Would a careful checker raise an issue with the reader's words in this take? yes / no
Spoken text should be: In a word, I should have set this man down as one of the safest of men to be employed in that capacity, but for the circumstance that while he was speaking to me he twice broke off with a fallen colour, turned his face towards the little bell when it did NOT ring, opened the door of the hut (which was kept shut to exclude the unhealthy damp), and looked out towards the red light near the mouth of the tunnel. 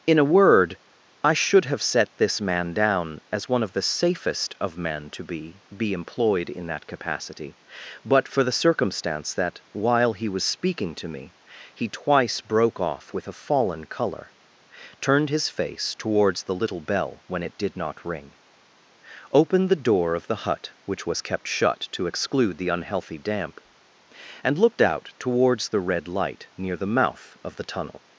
yes